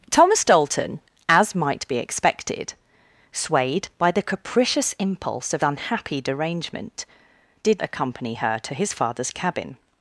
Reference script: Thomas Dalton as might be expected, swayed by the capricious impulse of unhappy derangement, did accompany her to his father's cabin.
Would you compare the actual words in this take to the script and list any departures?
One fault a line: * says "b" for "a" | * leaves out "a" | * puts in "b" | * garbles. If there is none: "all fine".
all fine